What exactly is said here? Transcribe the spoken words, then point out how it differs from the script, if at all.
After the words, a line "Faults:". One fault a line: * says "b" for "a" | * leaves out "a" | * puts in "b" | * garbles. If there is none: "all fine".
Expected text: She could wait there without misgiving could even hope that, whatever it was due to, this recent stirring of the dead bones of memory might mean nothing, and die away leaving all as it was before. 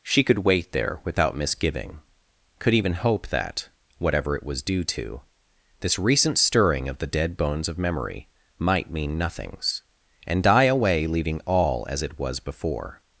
She could wait there without misgiving could even hope that, whatever it was due to, this recent stirring of the dead bones of memory might mean nothings, and die away leaving all as it was before.
Faults:
* says "nothings" for "nothing"